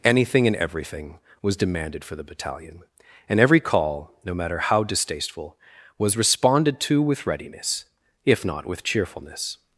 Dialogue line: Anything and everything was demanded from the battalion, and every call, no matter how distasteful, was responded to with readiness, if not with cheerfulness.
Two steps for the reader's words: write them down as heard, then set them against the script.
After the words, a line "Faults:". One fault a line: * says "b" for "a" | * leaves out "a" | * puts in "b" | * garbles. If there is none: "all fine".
Anything and everything was demanded for the battalion, and every call, no matter how distasteful, was responded to with readiness, if not with cheerfulness.
Faults:
* says "for" for "from"